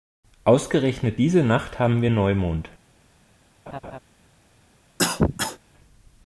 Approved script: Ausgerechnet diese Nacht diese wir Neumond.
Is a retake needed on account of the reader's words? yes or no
yes